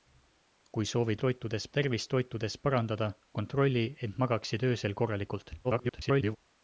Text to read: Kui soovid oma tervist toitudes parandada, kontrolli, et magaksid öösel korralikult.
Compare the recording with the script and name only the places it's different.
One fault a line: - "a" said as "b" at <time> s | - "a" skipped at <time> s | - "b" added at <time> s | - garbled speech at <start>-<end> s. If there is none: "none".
- "oma" said as "toitudes" at 1.2 s
- garbled speech at 5.6-6.4 s